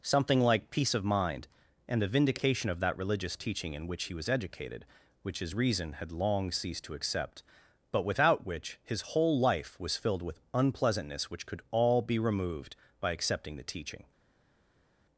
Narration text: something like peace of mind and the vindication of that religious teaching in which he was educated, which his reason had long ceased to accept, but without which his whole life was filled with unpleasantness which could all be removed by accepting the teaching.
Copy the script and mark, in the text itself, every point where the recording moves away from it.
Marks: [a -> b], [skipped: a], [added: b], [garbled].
something like peace of mind and the vindication of that religious teaching in which he was educated, which his reason had long ceased to accept, but without which his whole life was filled with unpleasantness which could all be removed by accepting the teaching.